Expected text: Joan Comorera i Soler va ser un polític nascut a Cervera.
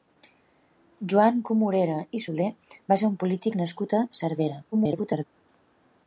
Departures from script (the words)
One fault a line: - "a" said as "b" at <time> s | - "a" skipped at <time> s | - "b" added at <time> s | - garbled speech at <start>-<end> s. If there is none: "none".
- garbled speech at 4.7-5.3 s